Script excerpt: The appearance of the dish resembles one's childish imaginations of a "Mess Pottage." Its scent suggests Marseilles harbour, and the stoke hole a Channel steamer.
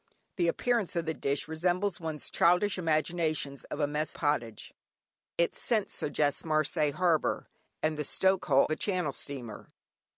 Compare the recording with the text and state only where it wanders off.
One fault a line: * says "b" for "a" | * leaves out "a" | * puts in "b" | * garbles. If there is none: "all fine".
all fine